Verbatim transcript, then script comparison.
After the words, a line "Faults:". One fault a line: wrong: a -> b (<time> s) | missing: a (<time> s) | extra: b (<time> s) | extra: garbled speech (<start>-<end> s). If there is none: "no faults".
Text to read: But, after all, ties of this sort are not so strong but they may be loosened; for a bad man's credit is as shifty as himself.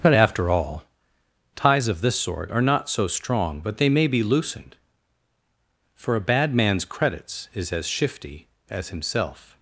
But, after all, ties of this sort are not so strong but they may be loosened; for a bad man's credits is as shifty as himself.
Faults:
wrong: credit -> credits (6.8 s)